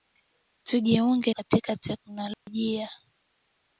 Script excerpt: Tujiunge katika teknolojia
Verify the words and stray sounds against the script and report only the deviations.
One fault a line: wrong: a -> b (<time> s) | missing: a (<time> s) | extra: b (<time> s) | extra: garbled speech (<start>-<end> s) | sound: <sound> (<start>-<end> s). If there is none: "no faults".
sound: dropout (2.3-2.5 s)